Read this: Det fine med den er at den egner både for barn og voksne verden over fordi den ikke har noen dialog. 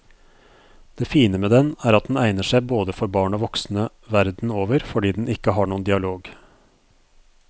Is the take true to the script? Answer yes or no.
no